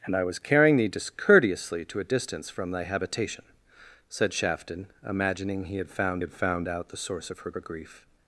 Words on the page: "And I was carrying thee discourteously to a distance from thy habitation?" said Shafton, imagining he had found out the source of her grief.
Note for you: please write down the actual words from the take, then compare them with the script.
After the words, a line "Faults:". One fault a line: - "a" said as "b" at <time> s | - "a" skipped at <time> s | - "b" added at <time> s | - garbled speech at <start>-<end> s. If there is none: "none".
"And I was carrying thee discourteously to a distance from thy habitation?" said Shafton, imagining he had found had found out the source of her her grief.
Faults:
- "had found" added at 6.2 s
- "her" added at 7.5 s